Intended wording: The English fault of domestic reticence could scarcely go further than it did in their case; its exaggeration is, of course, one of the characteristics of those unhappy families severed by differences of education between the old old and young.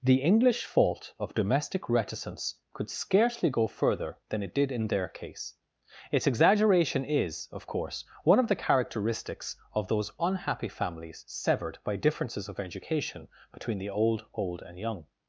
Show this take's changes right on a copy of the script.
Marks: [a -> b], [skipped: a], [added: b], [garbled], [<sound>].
The English fault of domestic reticence could scarcely go further than it did in their case; its exaggeration is, of course, one of the characteristics of those unhappy families severed by differences of education between the old old and young.